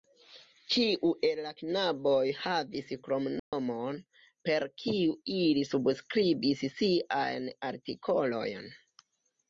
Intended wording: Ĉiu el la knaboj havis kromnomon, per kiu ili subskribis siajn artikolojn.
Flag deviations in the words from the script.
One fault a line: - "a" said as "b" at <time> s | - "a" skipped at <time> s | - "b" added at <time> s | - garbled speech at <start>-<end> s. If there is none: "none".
none